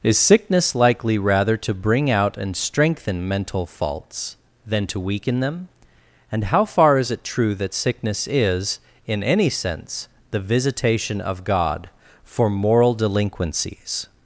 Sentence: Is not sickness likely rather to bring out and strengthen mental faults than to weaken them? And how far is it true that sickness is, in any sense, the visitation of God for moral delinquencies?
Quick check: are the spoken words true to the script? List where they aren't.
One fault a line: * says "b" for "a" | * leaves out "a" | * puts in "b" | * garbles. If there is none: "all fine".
* leaves out "not"